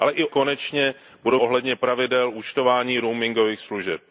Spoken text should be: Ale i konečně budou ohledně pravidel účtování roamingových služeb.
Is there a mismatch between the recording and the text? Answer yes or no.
no